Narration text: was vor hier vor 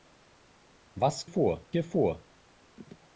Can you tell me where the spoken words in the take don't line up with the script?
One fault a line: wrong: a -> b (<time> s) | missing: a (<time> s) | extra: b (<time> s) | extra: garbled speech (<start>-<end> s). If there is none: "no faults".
no faults